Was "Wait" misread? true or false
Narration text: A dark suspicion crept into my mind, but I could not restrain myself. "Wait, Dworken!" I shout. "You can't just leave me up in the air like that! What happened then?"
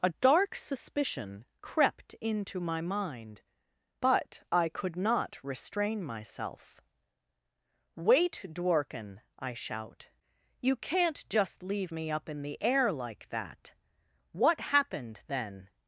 false